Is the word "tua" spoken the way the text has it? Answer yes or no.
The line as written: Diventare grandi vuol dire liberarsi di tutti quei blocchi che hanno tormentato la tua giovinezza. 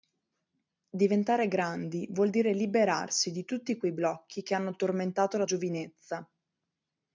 no